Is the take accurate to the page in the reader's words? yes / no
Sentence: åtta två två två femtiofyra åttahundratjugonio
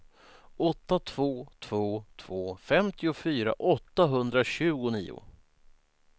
yes